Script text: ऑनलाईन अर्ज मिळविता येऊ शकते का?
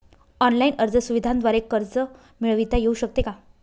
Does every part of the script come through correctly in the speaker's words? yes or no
no